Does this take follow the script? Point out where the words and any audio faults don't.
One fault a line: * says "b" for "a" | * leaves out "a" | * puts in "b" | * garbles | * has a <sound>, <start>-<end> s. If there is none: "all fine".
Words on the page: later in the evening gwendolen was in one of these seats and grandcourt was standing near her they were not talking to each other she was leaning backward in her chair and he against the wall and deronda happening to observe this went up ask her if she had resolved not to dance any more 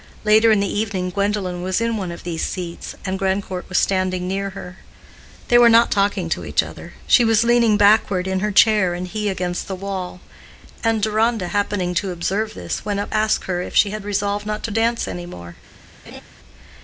* has a laugh, 16.0-16.2 s